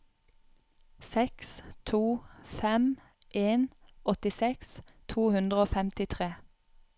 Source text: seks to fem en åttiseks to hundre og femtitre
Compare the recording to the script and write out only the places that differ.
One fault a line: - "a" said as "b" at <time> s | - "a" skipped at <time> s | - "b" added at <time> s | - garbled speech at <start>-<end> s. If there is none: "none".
none